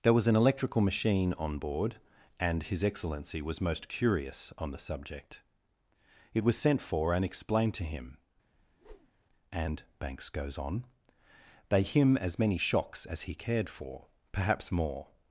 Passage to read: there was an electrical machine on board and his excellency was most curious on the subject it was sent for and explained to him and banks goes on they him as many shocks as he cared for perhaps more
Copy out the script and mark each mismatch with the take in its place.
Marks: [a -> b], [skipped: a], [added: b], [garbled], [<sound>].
there was an electrical machine on board and his excellency was most curious on the subject it was sent for and explained to him [whoosh] and banks goes on they him as many shocks as he cared for perhaps more